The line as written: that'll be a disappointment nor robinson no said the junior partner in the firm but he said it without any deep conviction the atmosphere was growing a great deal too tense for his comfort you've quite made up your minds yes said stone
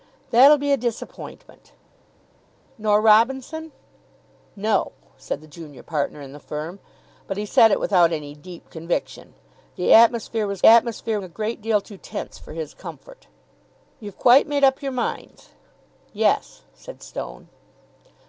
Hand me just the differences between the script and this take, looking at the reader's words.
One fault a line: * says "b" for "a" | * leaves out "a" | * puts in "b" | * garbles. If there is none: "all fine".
* says "atmosphere" for "growing"